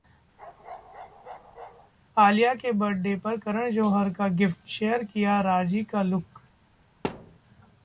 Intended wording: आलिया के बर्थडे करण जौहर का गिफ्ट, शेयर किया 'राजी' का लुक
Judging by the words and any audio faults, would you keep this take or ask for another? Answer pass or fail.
fail